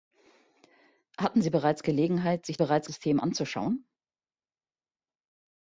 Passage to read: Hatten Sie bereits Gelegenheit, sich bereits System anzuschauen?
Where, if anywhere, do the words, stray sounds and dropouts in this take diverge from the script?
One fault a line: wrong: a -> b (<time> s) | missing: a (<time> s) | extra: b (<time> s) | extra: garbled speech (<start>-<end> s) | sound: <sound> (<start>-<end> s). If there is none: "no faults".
no faults